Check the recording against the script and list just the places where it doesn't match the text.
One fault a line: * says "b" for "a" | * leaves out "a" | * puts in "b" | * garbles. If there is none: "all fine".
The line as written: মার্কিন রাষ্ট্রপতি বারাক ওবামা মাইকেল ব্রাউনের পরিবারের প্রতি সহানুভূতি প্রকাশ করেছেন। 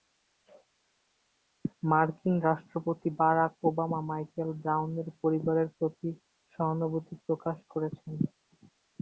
all fine